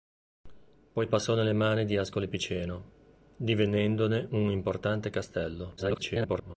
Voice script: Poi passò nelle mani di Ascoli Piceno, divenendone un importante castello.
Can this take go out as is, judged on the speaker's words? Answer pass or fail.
fail